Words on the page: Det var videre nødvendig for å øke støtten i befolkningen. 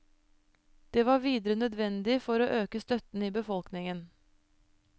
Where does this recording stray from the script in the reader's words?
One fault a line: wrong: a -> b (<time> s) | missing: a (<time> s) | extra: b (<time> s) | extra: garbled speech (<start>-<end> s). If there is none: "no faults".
no faults